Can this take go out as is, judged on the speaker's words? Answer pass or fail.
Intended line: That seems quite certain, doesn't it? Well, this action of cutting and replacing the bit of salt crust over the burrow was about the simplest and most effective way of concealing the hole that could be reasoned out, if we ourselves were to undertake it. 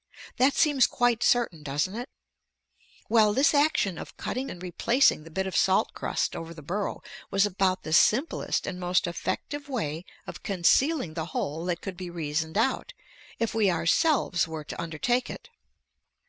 pass